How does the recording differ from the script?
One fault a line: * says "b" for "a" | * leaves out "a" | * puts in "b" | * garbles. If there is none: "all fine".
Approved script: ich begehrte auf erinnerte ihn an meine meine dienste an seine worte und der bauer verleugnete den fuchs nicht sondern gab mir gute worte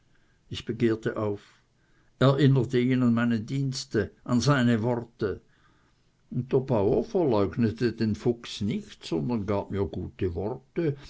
* leaves out "meine"